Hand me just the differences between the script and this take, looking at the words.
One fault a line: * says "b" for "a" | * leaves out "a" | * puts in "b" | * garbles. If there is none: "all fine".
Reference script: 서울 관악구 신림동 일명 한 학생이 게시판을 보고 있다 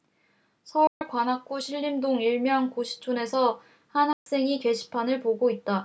* puts in "고시촌에서"